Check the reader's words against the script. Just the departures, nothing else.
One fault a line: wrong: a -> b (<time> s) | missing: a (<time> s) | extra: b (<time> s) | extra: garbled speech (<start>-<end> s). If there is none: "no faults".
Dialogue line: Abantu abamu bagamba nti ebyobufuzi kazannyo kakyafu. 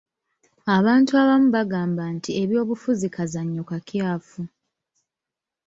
no faults